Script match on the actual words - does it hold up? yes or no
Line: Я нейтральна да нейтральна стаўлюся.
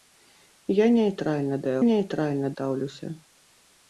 yes